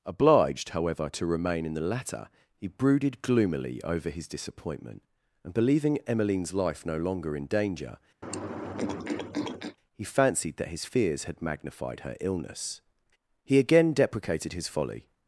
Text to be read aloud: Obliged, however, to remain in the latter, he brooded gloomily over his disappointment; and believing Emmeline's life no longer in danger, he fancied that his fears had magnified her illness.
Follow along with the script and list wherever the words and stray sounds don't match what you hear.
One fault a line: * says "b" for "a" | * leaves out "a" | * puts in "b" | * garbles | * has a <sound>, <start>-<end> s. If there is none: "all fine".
* has a throat clearing, 8.2-9.8 s
* puts in "He again deprecated his folly"